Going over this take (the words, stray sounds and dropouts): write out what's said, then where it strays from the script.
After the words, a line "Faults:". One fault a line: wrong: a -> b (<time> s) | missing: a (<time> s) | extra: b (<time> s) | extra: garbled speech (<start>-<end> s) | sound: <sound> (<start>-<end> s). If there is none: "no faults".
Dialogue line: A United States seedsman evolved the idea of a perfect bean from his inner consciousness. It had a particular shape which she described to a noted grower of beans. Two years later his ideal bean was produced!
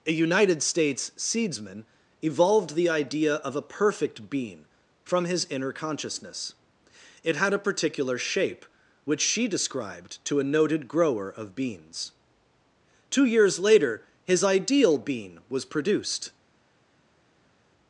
A United States seedsman evolved the idea of a perfect bean from his inner consciousness. It had a particular shape which she described to a noted grower of beans. Two years later his ideal bean was produced!
Faults:
no faults